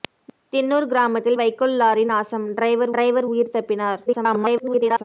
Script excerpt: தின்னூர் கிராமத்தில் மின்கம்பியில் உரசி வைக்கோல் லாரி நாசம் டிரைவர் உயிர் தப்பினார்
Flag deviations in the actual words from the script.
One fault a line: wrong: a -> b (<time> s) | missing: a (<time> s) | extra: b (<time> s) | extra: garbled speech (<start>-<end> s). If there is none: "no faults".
missing: மின்கம்பியில் உரசி (1.4 s)
extra: டிரைவர் (2.9 s)
extra: garbled speech (4.1-5.0 s)